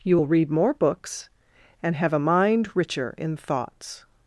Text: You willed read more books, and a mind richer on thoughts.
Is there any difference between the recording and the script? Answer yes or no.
yes